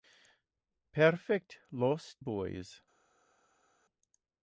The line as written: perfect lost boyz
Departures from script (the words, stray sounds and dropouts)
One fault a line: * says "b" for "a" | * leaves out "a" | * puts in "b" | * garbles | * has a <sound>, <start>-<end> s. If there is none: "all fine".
all fine